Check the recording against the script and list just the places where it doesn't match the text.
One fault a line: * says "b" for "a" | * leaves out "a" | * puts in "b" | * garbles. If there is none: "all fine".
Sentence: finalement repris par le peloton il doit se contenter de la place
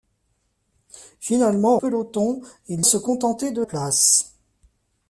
* leaves out "repris par le"
* leaves out "doit"
* leaves out "la"